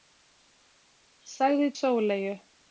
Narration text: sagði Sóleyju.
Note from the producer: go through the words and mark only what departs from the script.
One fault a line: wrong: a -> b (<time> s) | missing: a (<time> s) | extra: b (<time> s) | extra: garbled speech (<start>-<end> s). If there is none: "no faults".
no faults